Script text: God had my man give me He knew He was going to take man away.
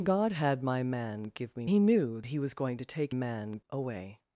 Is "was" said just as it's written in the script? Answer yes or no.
yes